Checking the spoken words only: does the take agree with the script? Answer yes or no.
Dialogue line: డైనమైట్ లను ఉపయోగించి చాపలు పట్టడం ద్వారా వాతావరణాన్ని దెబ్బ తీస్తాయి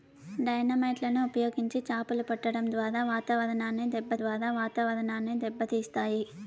no